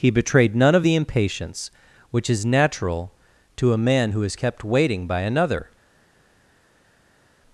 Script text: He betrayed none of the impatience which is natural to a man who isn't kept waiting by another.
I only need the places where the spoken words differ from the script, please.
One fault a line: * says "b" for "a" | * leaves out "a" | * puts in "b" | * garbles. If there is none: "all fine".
* says "is" for "isn't"